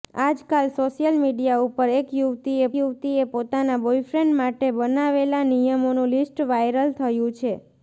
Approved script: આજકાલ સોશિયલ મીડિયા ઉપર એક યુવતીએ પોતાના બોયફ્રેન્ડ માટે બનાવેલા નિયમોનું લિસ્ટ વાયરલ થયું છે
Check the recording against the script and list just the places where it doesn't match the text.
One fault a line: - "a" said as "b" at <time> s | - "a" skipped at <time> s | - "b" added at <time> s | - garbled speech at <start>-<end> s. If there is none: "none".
- "યુવતીએ" added at 2.8 s